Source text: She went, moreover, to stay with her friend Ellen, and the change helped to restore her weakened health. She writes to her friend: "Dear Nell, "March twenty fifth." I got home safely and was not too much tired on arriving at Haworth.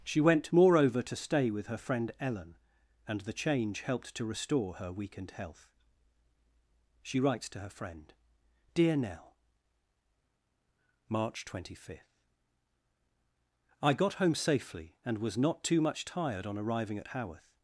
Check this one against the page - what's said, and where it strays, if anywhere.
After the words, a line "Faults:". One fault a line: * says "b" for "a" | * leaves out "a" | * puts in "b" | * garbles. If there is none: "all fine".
She went, moreover, to stay with her friend Ellen, and the change helped to restore her weakened health. She writes to her friend: "Dear Nell, "March twenty fifth." I got home safely and was not too much tired on arriving at Haworth.
Faults:
all fine